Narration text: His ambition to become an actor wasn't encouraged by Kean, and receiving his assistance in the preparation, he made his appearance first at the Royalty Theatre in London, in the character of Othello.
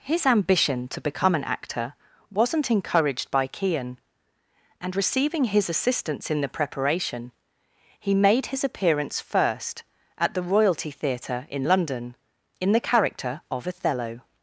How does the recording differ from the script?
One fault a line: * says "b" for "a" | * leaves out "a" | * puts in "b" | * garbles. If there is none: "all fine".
all fine